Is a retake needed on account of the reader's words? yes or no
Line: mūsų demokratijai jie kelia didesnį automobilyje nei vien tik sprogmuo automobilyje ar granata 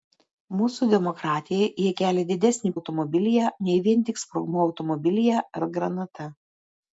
no